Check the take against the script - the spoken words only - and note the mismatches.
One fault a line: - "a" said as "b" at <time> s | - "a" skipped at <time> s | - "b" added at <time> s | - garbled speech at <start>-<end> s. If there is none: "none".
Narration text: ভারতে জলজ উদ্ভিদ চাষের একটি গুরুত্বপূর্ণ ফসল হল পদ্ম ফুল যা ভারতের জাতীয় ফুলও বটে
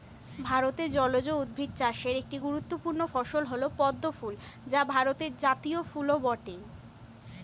none